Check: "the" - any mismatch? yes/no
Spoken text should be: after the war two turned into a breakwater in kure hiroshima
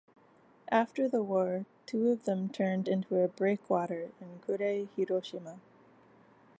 no